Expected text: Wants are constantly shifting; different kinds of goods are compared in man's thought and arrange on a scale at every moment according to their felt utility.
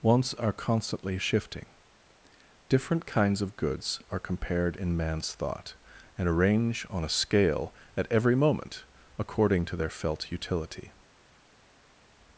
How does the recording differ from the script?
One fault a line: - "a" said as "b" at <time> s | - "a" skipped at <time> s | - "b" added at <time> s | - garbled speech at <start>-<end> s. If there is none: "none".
none